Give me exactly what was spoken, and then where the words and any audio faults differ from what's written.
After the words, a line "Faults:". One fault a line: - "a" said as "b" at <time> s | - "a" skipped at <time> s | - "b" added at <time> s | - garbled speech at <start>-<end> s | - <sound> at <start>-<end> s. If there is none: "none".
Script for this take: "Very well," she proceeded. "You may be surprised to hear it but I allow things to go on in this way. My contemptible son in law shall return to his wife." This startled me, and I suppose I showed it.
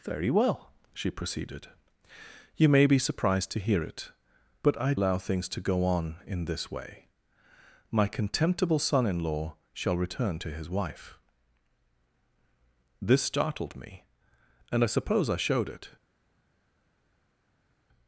"Very well," she proceeded. "You may be surprised to hear it but I allow things to go on in this way. My contemptible son in law shall return to his wife." This startled me, and I suppose I showed it.
Faults:
none